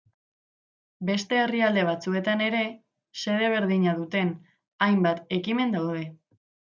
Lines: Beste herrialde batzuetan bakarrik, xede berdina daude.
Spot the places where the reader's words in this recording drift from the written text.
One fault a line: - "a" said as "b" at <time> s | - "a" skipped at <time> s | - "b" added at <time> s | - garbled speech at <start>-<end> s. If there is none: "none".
- "bakarrik" said as "ere" at 2.5 s
- "duten hainbat ekimen" added at 4.0 s